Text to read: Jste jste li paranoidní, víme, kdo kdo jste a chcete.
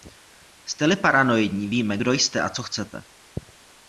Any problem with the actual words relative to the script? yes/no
yes